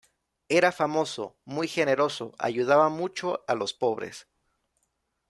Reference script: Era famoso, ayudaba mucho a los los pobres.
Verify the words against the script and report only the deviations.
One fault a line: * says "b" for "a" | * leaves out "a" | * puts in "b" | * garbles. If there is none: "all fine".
* puts in "muy generoso"
* leaves out "los"